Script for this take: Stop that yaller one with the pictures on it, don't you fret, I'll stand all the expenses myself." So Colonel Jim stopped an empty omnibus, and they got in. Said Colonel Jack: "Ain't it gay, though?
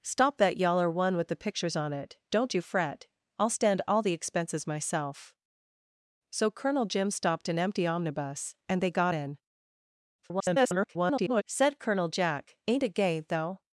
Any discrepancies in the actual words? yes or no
yes